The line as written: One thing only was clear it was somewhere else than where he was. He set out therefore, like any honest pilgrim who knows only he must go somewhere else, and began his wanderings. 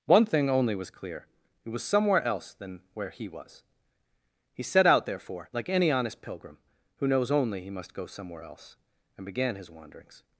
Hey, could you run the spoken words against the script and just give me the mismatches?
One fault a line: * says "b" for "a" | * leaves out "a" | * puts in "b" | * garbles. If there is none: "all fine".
all fine